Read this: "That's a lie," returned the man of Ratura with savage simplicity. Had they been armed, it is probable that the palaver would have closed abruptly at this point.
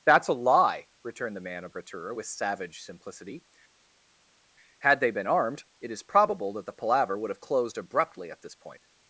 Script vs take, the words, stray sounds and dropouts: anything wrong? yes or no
no